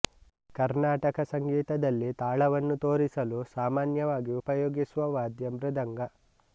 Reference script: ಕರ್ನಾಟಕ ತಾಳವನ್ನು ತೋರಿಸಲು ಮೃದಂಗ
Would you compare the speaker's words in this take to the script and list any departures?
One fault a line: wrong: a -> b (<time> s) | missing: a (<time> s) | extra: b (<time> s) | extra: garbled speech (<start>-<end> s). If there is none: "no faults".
extra: ಸಂಗೀತದಲ್ಲಿ (1.3 s)
extra: ಸಾಮಾನ್ಯವಾಗಿ ಉಪಯೋಗಿಸುವ ವಾದ್ಯ (3.5 s)